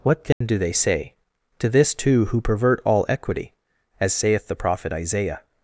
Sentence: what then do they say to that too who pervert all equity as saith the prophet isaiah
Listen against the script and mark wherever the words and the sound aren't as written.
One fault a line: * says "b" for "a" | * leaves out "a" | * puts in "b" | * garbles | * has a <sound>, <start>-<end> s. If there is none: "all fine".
* has a dropout, 0.3-0.4 s
* says "this" for "that"